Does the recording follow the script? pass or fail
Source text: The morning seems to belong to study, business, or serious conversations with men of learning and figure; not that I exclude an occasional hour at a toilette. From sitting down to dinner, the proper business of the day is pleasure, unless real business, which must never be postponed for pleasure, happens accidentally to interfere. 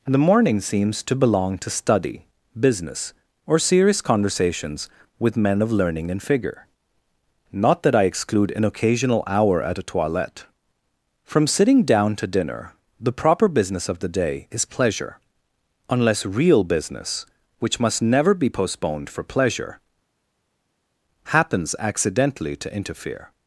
pass